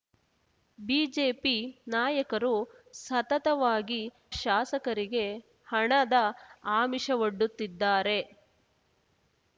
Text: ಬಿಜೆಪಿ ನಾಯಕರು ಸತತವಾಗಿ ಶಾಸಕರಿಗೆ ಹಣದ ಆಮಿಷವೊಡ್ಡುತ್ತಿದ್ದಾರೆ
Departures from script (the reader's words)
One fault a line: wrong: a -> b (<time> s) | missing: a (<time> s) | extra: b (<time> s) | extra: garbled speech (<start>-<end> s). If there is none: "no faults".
no faults